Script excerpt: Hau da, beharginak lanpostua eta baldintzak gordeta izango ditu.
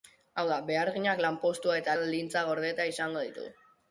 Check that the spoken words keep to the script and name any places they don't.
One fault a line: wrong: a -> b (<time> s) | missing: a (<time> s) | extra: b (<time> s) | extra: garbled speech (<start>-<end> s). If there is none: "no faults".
no faults